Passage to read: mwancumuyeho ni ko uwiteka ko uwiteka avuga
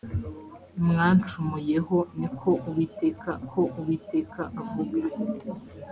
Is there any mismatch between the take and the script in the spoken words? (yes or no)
no